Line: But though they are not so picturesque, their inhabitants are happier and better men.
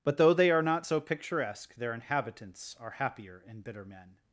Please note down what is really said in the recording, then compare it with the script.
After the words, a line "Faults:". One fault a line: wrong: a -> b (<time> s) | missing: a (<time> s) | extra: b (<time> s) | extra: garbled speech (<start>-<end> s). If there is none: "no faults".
But though they are not so picturesque, their inhabitants are happier and bitter men.
Faults:
wrong: better -> bitter (3.6 s)